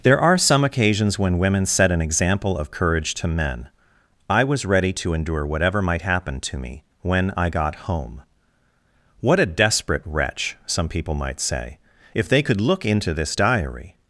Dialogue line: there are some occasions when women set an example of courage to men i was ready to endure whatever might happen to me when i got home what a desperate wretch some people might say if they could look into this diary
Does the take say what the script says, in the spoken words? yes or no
yes